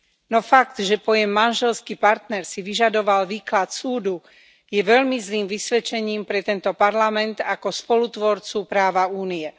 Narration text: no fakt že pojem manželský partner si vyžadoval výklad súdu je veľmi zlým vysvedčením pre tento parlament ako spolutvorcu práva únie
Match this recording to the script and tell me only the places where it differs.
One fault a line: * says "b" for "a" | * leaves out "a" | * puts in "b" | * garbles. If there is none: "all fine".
all fine